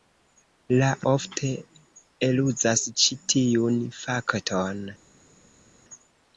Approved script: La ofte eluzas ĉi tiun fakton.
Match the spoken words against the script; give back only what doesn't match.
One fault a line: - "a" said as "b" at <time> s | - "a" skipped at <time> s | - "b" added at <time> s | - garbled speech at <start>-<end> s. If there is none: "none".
none